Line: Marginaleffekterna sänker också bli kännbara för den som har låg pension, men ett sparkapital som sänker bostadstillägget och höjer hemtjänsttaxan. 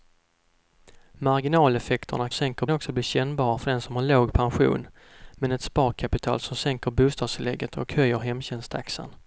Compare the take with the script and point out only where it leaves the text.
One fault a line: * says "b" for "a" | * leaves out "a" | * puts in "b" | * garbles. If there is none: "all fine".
all fine